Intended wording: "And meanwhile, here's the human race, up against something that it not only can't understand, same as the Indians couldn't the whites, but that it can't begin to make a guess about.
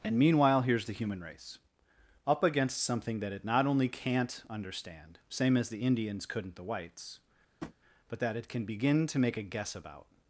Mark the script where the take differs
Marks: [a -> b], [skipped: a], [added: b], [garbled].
"And meanwhile, here's the human race, up against something that it not only can't understand, same as the Indians couldn't the whites, but that it [can't -> can] begin to make a guess about.